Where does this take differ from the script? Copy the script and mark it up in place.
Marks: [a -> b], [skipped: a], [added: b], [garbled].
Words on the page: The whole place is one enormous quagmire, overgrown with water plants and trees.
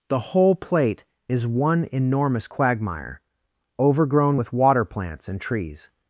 The whole [place -> plate] is one enormous quagmire, overgrown with water plants and trees.